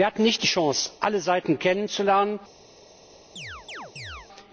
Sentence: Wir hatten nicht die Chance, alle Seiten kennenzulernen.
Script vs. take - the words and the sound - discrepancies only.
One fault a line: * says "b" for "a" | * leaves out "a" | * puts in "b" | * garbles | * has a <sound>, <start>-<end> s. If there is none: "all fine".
* has a chirp, 3.4-4.3 s